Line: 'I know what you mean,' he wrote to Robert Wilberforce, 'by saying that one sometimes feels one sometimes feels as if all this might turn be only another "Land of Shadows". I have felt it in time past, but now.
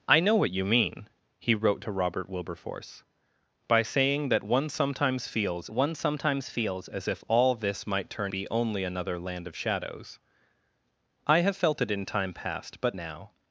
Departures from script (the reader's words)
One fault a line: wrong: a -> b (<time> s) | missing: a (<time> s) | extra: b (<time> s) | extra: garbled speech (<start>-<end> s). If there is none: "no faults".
no faults